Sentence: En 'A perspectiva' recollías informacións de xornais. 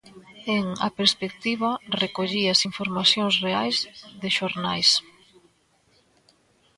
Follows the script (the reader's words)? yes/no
no